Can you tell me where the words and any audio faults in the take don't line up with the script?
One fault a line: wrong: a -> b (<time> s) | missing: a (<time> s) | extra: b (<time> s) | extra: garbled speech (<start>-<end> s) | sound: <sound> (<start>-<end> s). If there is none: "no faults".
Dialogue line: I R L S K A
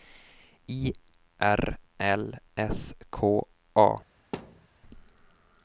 sound: thud (4.3-4.7 s)